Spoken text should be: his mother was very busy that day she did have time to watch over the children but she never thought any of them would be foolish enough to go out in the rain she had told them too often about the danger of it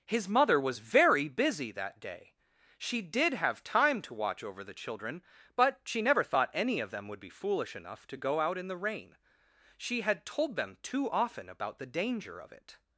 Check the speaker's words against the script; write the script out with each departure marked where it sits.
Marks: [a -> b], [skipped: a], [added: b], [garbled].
his mother was very busy that day she did have time to watch over the children but she never thought any of them would be foolish enough to go out in the rain she had told them too often about the danger of it